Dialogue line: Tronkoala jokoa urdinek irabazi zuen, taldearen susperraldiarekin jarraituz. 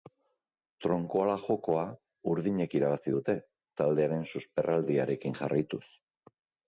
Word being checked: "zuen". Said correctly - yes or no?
no